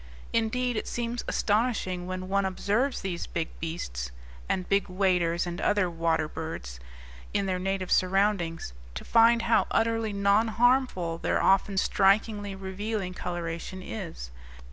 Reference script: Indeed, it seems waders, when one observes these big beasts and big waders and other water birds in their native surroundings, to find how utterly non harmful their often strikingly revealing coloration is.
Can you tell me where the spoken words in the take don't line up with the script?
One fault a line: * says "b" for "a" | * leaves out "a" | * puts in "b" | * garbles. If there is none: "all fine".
* says "astonishing" for "waders"